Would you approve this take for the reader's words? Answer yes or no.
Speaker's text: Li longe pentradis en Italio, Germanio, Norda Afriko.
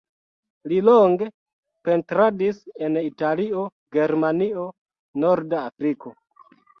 yes